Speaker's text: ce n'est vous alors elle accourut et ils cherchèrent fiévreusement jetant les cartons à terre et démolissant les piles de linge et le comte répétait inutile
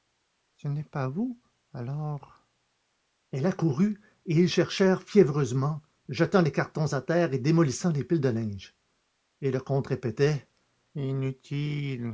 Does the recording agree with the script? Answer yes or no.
no